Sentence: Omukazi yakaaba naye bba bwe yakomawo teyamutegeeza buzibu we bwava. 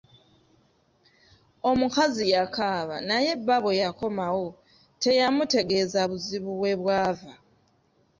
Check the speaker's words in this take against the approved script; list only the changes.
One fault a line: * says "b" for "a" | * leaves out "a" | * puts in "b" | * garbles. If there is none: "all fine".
all fine